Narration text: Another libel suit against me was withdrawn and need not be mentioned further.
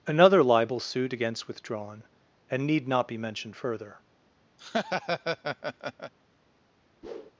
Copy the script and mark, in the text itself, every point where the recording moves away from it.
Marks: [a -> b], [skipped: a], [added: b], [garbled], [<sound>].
Another libel suit against [skipped: me was] withdrawn and need not be mentioned further. [laugh] [whoosh]